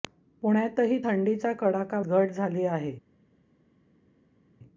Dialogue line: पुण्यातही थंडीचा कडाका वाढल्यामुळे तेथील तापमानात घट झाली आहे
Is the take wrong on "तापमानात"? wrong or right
wrong